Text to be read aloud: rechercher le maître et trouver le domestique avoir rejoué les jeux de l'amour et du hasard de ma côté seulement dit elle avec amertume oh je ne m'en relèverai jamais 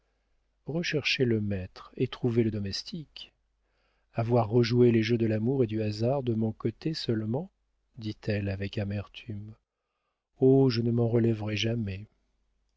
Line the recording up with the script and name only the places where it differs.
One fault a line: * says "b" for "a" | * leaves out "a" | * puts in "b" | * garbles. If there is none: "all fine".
* says "mon" for "ma"